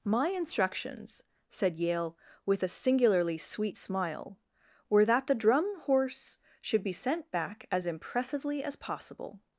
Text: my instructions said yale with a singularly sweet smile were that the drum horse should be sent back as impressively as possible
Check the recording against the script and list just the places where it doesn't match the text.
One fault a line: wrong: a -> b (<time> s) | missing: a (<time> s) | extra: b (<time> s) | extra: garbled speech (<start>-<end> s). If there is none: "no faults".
no faults